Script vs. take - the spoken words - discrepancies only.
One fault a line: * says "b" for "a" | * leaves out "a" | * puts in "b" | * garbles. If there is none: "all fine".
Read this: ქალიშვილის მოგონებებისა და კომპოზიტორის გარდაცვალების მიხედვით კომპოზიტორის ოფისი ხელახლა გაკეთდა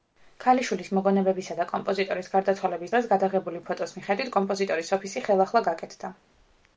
* puts in "დღეს გადაღებული ფოტოს"